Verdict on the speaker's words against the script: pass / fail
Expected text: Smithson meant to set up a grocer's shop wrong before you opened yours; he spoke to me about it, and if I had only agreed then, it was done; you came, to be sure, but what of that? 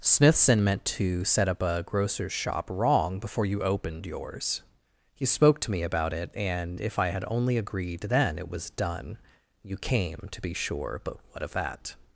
pass